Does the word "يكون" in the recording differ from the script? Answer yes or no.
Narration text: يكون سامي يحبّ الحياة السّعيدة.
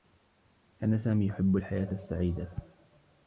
yes